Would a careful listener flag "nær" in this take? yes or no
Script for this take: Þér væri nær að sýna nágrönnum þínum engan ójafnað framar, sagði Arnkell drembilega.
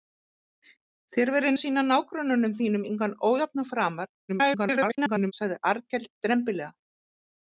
yes